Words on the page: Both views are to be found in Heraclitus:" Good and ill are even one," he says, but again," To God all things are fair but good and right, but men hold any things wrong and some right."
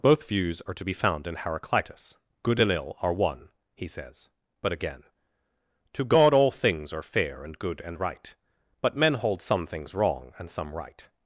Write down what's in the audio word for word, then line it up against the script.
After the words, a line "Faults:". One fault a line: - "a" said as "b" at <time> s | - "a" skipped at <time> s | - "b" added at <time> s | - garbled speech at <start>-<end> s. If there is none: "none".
Both views are to be found in Heraclitus:" Good and ill are one," he says, but again," To God all things are fair and good and right, but men hold some things wrong and some right."
Faults:
- "even" skipped at 3.1 s
- "but" said as "and" at 7.4 s
- "any" said as "some" at 9.4 s